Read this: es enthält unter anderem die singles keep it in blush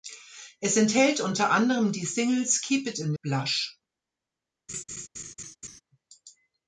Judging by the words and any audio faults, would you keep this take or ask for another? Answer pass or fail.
fail